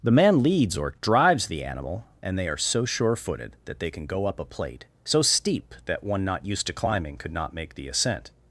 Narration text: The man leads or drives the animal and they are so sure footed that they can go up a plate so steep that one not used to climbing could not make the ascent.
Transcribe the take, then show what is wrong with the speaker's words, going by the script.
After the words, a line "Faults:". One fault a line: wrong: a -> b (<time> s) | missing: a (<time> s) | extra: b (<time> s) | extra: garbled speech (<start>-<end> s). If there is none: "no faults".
The man leads or drives the animal and they are so sure footed that they can go up a plate so steep that one not used to climbing could not make the ascent.
Faults:
no faults